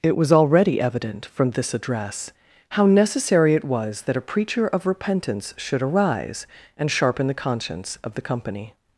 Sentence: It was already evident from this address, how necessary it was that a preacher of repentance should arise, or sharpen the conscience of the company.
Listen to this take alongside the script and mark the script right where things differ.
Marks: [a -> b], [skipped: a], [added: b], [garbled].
It was already evident from this address, how necessary it was that a preacher of repentance should arise, [or -> and] sharpen the conscience of the company.